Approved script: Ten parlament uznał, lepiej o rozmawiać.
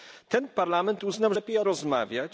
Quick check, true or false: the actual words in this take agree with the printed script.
true